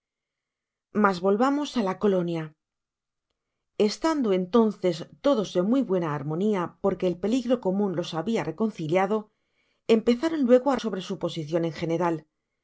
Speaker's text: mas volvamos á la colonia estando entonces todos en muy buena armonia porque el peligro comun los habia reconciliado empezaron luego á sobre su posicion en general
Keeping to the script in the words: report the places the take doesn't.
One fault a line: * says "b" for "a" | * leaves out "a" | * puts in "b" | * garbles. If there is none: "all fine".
all fine